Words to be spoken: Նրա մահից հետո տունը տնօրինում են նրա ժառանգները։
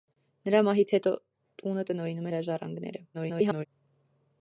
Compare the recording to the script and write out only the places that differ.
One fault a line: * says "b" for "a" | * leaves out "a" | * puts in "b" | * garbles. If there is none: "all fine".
* leaves out "են"
* garbles